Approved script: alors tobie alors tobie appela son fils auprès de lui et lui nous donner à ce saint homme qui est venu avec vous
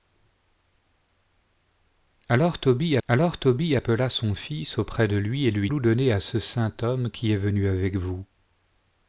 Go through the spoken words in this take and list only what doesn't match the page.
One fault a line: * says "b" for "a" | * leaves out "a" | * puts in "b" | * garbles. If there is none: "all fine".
all fine